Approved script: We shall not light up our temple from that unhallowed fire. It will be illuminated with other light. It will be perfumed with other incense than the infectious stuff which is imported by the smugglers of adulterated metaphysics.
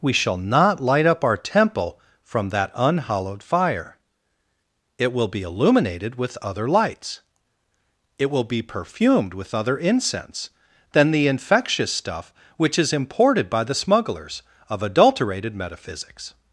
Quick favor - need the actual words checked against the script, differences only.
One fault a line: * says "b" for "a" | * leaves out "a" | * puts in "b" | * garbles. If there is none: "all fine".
* says "lights" for "light"